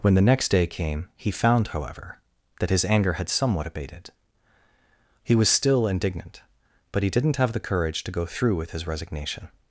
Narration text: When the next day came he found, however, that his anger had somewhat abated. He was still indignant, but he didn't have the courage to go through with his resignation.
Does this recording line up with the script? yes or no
yes